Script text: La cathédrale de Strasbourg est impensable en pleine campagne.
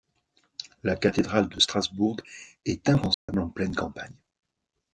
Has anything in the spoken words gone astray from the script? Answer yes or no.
no